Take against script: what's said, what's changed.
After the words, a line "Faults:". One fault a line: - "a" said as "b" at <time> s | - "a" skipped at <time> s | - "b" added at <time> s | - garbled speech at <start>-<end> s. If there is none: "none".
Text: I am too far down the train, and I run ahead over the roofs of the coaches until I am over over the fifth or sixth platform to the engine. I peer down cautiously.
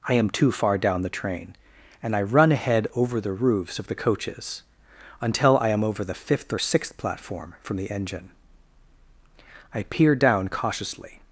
I am too far down the train, and I run ahead over the roofs of the coaches until I am over the fifth or sixth platform from the engine. I peer down cautiously.
Faults:
- "over" skipped at 6.1 s
- "to" said as "from" at 7.6 s